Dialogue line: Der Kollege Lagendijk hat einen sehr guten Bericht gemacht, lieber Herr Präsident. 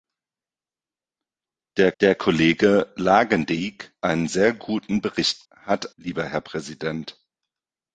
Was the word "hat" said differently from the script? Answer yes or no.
yes